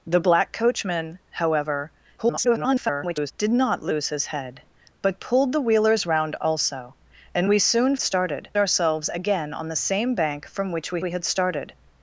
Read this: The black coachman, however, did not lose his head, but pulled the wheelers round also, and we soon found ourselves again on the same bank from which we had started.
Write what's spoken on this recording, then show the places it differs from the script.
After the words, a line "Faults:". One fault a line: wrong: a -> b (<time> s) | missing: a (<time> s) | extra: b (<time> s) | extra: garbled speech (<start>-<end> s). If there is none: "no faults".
The black coachman, however, [garbled] did not lose his head, but pulled the wheelers round also, and we soon started ourselves again on the same bank from which we we had started.
Faults:
extra: garbled speech (2.2-3.3 s)
wrong: found -> started (8.0 s)
extra: we (11.0 s)